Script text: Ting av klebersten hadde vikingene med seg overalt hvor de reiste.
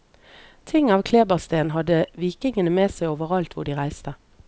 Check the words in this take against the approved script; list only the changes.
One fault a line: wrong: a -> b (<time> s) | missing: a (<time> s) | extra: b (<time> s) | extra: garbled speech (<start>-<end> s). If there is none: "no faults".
no faults